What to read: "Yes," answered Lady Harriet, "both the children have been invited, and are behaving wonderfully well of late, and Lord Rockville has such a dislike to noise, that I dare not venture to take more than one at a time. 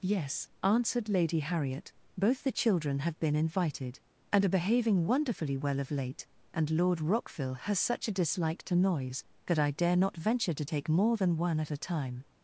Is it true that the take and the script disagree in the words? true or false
false